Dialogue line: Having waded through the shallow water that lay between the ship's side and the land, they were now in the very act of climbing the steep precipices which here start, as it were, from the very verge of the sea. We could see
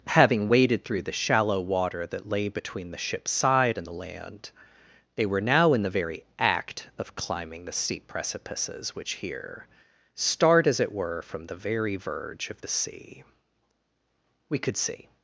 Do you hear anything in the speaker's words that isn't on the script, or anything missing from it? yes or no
no